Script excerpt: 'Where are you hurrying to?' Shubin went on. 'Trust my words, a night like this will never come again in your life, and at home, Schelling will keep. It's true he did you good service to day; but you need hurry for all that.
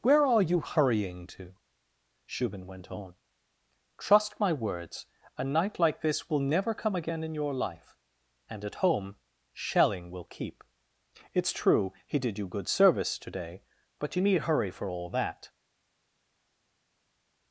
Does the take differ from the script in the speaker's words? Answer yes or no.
no